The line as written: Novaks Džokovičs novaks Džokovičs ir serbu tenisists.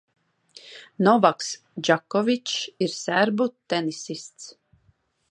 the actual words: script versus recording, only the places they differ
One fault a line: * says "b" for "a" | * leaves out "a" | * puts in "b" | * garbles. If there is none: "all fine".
* leaves out "novaks Džokovičs"